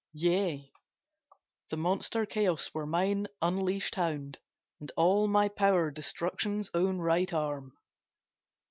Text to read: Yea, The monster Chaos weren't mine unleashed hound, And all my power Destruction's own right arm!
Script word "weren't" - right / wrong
wrong